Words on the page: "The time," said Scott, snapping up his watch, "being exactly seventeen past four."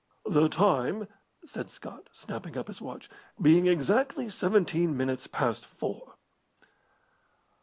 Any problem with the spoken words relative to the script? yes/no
yes